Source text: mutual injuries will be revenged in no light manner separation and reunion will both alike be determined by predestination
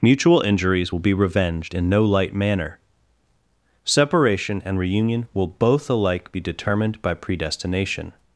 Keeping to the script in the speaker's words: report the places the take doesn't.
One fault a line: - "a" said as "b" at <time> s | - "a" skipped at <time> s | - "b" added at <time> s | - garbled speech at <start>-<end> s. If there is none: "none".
none